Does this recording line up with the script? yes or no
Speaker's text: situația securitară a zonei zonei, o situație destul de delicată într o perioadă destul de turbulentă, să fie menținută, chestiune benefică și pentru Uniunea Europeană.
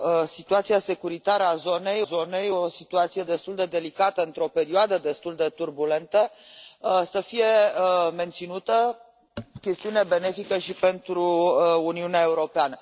yes